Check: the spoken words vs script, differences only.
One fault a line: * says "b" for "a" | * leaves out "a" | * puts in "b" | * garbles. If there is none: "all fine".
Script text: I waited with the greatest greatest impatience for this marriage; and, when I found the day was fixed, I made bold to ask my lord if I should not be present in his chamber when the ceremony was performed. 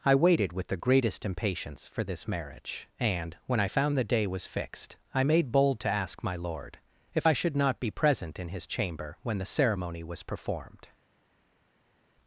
* leaves out "greatest"